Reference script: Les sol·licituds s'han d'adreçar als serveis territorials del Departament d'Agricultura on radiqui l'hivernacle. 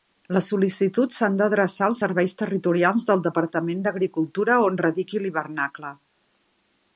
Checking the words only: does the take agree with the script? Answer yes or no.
yes